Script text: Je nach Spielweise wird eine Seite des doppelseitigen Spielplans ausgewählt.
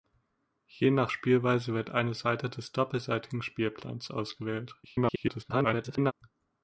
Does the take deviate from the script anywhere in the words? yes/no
yes